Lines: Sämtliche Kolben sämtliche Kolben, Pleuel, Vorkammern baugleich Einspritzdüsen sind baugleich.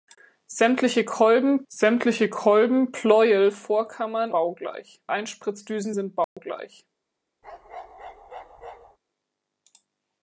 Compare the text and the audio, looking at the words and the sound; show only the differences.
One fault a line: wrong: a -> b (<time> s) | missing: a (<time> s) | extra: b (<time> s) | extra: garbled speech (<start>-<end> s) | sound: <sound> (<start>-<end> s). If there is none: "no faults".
sound: dropout (6.2-6.4 s)
sound: bark (7.4-9.0 s)